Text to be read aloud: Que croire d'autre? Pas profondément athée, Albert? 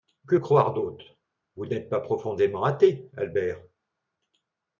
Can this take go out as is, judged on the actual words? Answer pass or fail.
fail